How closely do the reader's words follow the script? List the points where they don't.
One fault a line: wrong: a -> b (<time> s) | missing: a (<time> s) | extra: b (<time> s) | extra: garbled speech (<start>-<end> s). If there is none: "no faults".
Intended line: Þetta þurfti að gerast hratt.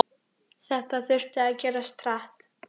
no faults